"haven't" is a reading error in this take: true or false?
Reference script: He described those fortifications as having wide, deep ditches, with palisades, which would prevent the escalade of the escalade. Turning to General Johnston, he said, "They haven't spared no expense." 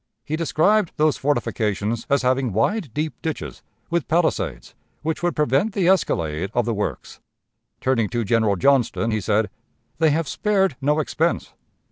true